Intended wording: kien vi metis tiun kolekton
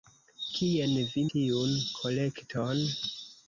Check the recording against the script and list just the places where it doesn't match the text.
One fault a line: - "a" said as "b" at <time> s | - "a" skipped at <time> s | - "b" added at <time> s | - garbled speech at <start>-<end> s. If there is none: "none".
- "metis" skipped at 1.2 s